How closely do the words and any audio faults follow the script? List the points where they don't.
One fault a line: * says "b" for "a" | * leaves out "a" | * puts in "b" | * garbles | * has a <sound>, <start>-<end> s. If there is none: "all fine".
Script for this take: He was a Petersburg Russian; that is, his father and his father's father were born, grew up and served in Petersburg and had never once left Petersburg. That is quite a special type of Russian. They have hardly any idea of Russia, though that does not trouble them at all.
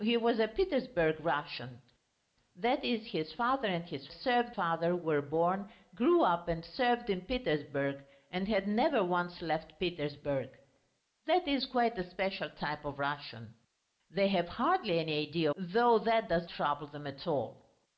* says "served" for "father's"
* leaves out "of Russia"
* leaves out "not"